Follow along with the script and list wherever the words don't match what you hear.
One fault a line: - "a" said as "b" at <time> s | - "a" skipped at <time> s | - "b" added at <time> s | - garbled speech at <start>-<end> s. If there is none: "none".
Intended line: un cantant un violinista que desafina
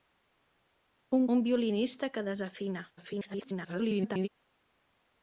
- "cantant" skipped at 1.3 s
- garbled speech at 3.0-4.3 s